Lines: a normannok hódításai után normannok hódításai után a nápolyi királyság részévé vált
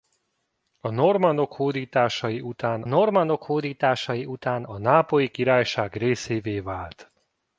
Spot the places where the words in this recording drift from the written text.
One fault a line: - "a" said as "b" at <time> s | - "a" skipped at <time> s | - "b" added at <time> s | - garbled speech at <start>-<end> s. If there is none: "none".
none